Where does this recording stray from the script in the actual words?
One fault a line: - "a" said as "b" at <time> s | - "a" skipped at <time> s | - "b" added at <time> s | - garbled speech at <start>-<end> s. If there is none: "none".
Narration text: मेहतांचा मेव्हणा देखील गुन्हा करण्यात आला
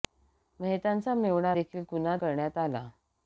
none